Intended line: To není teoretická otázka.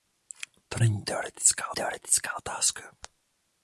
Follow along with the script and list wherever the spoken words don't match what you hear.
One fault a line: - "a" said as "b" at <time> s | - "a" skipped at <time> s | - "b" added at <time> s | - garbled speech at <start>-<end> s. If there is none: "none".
- "teoretická" added at 1.7 s